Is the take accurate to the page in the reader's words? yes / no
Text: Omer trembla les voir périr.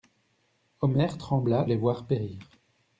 yes